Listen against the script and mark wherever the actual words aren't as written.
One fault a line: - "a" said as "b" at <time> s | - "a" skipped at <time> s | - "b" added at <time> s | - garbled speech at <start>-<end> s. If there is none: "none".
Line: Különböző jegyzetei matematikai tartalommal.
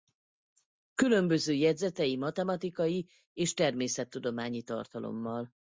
- "és természettudományi" added at 3.3 s